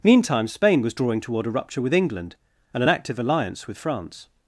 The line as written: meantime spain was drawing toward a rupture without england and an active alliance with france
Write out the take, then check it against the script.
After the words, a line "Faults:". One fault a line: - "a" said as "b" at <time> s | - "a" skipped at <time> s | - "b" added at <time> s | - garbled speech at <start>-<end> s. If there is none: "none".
meantime spain was drawing toward a rupture with england and an active alliance with france
Faults:
- "without" said as "with" at 1.8 s